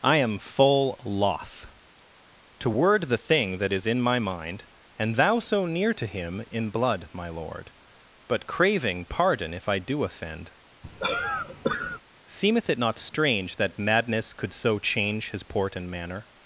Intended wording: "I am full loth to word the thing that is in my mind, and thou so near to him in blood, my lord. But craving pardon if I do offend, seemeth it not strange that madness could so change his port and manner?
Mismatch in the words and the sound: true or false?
true